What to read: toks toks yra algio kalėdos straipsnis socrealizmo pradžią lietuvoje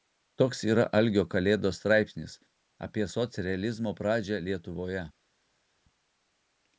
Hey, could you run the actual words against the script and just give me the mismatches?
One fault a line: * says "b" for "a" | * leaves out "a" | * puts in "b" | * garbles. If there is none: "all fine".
* leaves out "toks"
* puts in "apie"